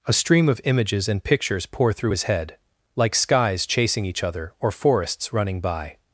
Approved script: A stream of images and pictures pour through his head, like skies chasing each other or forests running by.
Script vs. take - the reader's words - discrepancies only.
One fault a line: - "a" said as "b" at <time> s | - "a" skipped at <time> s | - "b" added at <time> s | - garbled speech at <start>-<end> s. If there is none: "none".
none